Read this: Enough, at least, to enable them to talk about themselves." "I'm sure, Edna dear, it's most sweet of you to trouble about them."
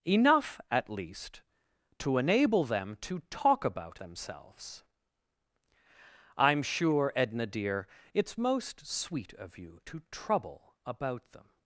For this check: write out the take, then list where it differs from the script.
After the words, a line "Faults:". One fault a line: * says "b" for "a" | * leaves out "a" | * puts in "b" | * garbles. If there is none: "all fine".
Enough, at least, to enable them to talk about themselves." "I'm sure, Edna dear, it's most sweet of you to trouble about them."
Faults:
all fine